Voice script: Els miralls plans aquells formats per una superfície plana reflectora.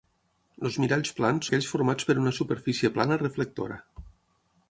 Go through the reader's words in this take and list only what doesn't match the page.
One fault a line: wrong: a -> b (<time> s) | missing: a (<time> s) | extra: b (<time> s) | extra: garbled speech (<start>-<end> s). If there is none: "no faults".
no faults